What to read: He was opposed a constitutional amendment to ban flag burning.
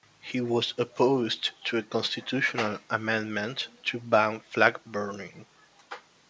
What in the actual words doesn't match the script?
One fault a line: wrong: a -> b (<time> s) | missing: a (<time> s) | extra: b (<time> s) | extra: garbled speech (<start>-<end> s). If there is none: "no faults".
extra: to (1.6 s)